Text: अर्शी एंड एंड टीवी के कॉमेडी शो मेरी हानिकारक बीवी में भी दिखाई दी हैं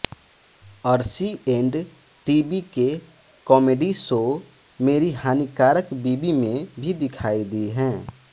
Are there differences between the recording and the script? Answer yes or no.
yes